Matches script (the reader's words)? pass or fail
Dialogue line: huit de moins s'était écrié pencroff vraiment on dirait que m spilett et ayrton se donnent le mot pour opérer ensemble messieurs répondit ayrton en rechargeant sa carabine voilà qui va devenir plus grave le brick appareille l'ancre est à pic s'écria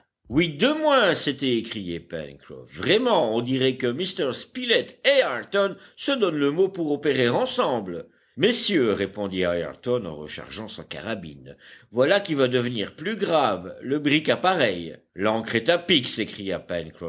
pass